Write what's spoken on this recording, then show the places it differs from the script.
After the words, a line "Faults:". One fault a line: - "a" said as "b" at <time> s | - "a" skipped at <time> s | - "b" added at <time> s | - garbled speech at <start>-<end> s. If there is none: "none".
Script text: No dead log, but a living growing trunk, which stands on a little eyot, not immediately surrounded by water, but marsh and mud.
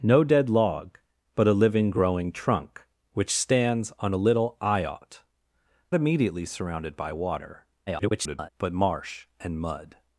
No dead log, but a living growing trunk, which stands on a little eyot, immediately surrounded by water, [garbled] but marsh and mud.
Faults:
- "not" skipped at 5.2 s
- garbled speech at 7.9-8.5 s